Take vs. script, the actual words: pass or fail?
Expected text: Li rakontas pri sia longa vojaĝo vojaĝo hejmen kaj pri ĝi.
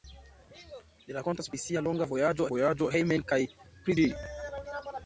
pass